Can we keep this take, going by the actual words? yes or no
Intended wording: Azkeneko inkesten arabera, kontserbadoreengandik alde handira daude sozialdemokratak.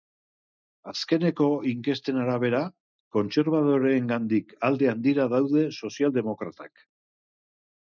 yes